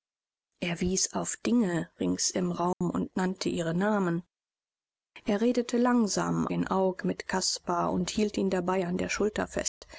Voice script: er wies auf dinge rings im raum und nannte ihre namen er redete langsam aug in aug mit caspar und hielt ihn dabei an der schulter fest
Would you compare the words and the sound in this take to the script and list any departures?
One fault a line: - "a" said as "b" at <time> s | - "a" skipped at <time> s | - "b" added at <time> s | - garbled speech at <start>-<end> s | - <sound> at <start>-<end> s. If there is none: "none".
- dropout at 2.7-2.8 s
- "aug" skipped at 6.5 s
- dropout at 9.7-9.8 s